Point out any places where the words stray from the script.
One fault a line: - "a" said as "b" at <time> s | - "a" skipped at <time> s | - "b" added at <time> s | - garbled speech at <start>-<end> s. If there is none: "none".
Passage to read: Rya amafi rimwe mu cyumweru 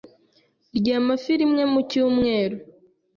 none